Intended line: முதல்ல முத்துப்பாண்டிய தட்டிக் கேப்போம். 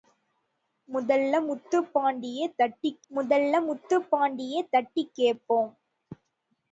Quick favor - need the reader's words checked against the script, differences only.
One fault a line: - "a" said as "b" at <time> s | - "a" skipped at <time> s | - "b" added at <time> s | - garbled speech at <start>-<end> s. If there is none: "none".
- "முதல்ல முத்துப்பாண்டிய தட்டிக்" added at 3.1 s